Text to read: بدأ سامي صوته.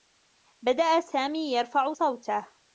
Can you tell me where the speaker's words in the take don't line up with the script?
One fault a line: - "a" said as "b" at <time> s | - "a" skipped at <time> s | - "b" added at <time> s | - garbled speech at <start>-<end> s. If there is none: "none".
- "يرفع" added at 1.5 s